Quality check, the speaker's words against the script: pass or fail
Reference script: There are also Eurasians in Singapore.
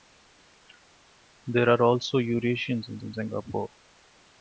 fail